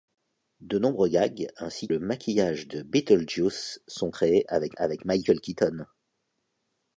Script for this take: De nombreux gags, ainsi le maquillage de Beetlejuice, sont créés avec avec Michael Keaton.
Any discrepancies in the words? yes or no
no